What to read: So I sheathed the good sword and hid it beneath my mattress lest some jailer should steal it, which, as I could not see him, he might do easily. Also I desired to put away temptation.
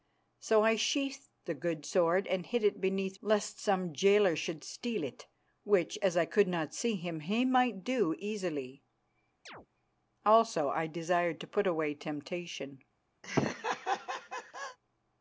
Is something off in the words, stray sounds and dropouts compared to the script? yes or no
yes